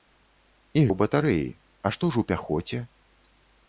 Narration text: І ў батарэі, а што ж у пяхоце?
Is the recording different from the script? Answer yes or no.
no